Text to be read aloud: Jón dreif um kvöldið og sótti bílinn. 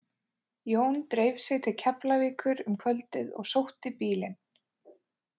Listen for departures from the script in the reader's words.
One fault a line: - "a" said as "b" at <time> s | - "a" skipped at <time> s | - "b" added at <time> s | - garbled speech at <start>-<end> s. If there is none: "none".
- "sig til Keflavíkur" added at 1.4 s